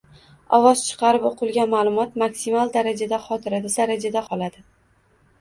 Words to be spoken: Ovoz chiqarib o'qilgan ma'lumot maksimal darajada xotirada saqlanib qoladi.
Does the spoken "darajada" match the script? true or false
true